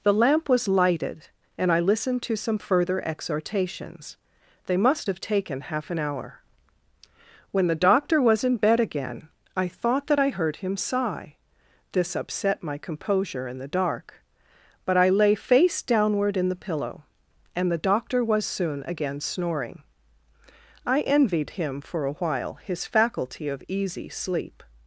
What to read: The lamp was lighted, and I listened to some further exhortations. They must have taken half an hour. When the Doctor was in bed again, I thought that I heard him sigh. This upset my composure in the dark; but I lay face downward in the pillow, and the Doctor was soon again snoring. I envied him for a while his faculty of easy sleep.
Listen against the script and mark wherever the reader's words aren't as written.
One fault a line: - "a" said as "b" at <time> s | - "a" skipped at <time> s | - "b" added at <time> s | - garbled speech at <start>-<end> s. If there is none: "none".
none